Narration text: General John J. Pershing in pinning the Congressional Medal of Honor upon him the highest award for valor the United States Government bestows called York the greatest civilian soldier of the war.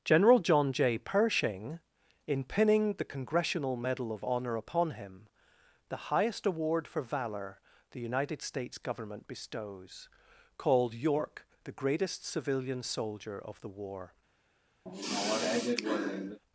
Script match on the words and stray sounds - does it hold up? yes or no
no